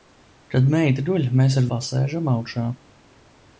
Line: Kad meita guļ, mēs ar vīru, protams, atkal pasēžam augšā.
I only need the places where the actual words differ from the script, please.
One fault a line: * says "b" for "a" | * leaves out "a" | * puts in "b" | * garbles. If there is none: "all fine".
* leaves out "vīru protams atkal"